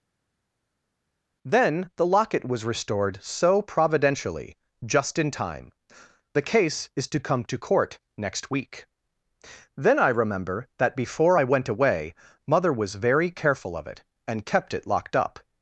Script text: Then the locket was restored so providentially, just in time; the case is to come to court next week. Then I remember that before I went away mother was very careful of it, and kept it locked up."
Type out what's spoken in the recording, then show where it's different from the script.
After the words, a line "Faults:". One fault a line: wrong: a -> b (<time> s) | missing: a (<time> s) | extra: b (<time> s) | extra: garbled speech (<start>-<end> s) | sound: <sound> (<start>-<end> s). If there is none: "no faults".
Then the locket was restored so providentially, just in time; the case is to come to court next week. Then I remember that before I went away mother was very careful of it, and kept it locked up."
Faults:
no faults